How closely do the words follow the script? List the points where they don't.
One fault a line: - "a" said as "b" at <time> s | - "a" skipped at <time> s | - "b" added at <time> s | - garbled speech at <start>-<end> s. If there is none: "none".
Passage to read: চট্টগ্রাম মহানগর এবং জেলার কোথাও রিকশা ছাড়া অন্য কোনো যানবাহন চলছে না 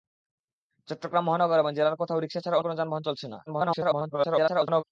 - "অন্য" skipped at 2.6 s
- garbled speech at 3.5-4.8 s